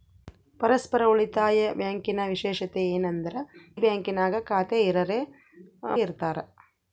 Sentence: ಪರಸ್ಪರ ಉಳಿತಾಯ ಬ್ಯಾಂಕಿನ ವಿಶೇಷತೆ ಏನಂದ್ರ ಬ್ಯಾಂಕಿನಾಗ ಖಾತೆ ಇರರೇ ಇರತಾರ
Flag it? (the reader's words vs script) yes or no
no